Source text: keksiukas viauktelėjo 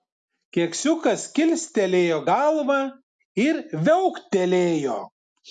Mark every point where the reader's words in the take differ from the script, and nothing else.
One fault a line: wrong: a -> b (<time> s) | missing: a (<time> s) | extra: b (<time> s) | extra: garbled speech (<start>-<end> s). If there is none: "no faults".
extra: kilstelėjo galvą ir (1.4 s)